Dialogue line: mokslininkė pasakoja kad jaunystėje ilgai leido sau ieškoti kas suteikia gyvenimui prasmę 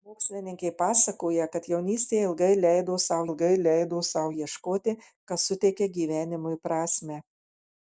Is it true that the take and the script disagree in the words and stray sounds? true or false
true